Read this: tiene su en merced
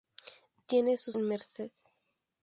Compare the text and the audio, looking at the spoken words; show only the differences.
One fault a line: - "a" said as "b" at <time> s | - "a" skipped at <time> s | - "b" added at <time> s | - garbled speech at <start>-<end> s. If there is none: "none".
none